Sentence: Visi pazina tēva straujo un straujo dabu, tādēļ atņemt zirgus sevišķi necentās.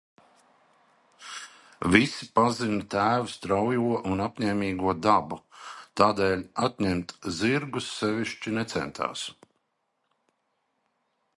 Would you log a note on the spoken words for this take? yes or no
yes